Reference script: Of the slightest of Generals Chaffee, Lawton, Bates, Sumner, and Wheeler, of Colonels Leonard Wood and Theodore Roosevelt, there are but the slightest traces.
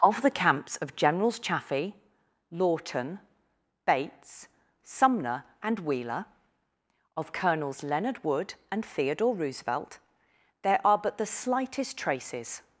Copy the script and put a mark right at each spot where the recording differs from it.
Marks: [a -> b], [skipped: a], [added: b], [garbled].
Of the [slightest -> camps] of Generals Chaffee, Lawton, Bates, Sumner, and Wheeler, of Colonels Leonard Wood and Theodore Roosevelt, there are but the slightest traces.